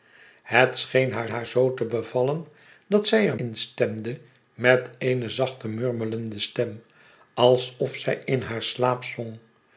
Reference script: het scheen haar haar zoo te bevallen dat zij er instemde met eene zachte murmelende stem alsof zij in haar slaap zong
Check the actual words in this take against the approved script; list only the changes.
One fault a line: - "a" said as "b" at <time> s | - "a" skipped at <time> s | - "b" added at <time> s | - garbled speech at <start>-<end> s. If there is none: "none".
none